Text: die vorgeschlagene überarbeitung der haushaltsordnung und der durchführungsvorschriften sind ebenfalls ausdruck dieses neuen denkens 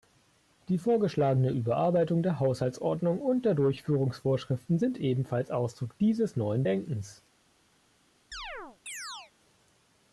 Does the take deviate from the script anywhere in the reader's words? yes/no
no